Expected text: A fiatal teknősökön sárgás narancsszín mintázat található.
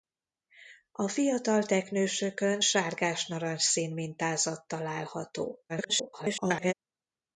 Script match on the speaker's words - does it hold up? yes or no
no